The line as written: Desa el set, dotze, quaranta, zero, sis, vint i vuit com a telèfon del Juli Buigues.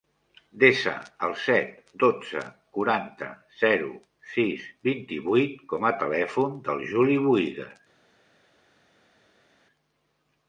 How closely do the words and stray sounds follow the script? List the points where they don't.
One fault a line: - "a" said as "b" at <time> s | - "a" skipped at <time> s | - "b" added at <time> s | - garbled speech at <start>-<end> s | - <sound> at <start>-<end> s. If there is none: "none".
none